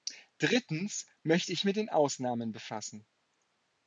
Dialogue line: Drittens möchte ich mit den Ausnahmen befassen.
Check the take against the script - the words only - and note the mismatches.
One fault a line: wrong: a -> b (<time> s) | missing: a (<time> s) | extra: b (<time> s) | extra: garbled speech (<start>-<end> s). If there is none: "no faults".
no faults